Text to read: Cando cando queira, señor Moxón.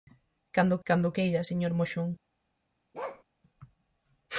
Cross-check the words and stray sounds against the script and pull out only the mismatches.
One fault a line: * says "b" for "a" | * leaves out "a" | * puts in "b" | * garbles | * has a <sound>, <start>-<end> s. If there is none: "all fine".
* has a bark, 2.9-3.2 s